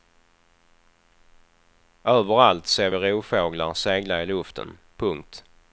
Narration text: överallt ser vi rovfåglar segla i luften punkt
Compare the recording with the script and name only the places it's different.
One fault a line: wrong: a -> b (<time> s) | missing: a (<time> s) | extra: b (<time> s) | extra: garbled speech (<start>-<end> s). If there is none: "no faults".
no faults